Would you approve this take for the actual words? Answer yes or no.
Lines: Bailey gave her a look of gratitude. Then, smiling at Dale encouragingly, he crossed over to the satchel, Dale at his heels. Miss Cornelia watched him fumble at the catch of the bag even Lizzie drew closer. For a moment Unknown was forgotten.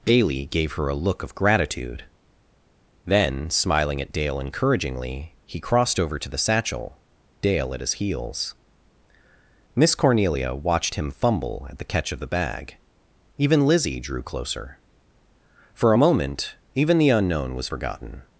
no